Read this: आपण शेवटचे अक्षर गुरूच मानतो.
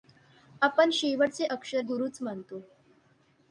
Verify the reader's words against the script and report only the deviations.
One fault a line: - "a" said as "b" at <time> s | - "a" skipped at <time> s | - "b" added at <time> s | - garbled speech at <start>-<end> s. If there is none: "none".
none